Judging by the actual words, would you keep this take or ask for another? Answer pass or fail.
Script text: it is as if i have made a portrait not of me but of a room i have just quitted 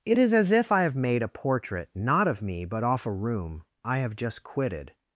fail